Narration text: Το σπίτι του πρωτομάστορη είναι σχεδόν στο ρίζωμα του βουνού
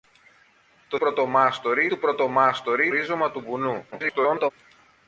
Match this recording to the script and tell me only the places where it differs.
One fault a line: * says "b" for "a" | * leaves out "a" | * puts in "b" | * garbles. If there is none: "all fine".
* says "πρωτομάστορη" for "σπίτι"
* leaves out "είναι σχεδόν στο"
* garbles